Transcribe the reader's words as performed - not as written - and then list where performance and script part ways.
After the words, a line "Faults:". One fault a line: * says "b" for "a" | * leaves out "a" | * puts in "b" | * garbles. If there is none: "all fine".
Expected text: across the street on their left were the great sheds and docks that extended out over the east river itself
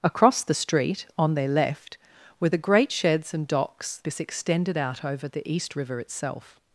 across the street on their left were the great sheds and docks this extended out over the east river itself
Faults:
* says "this" for "that"